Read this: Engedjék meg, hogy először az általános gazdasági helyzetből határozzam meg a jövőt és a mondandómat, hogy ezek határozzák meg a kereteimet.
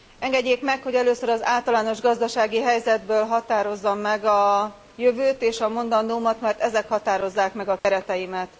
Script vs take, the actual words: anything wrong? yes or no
yes